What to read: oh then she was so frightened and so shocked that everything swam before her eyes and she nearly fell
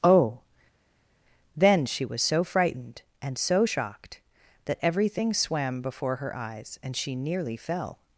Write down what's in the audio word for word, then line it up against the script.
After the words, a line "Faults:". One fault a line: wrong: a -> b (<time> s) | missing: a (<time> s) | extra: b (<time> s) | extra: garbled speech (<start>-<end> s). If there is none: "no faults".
oh then she was so frightened and so shocked that everything swam before her eyes and she nearly fell
Faults:
no faults